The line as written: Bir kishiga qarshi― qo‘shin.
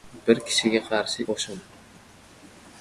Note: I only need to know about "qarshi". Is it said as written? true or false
true